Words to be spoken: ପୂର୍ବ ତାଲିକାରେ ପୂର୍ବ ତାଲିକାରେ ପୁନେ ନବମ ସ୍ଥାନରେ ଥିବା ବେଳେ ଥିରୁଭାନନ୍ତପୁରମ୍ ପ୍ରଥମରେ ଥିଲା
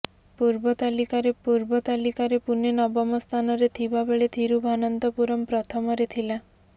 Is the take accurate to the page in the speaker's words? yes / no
yes